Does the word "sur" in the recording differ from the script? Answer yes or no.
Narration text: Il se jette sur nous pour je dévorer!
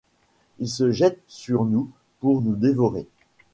no